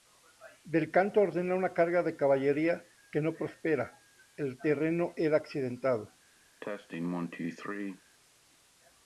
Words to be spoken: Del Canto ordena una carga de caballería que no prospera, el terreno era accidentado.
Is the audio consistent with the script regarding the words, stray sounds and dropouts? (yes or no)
no